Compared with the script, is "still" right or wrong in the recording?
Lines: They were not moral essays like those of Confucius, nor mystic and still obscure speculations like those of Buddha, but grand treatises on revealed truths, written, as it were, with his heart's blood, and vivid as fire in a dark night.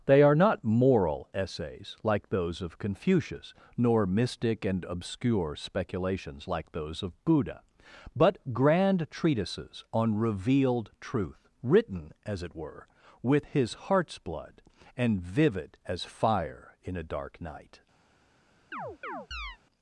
wrong